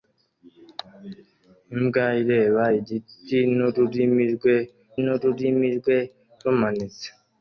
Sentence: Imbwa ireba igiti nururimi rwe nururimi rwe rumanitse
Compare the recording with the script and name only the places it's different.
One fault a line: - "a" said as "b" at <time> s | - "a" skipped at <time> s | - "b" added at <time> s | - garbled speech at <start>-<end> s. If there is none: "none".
none